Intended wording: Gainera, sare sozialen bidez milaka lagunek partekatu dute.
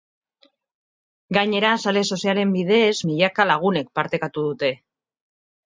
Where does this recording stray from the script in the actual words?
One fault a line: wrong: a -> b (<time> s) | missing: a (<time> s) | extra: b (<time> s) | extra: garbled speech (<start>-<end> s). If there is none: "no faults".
no faults